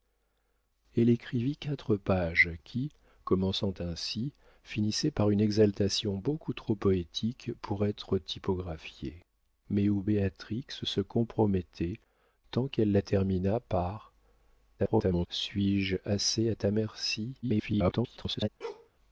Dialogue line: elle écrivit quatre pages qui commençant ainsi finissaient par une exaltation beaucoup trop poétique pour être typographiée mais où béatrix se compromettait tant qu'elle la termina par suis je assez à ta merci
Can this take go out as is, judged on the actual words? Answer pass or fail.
fail